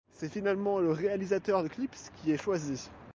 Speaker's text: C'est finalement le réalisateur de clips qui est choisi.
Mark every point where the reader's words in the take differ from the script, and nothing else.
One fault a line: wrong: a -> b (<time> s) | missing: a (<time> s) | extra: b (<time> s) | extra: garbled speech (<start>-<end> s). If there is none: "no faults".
no faults